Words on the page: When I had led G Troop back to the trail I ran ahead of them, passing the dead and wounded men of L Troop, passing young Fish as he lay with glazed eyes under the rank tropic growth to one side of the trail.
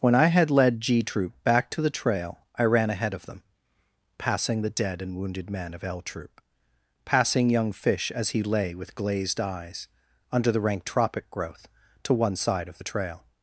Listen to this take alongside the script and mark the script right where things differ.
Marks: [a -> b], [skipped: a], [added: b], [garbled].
When I had led G Troop back to the trail I ran ahead of them, passing the dead and wounded men of L Troop, passing young Fish as he lay with glazed eyes under the rank tropic growth to one side of the trail.